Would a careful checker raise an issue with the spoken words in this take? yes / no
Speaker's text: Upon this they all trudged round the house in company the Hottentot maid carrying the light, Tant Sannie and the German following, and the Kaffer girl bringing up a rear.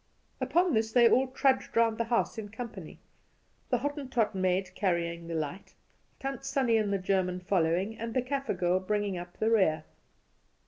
yes